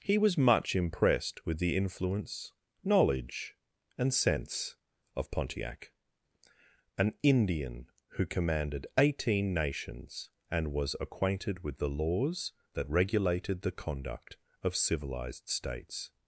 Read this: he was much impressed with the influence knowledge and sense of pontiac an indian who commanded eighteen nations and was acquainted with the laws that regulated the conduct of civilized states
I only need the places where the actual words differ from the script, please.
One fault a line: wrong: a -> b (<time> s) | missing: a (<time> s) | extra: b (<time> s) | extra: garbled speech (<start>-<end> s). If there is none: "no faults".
no faults